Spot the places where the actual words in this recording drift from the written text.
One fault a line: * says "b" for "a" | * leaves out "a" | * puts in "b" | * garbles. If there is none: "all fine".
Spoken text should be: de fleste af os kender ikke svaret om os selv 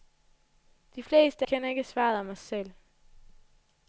* leaves out "af os"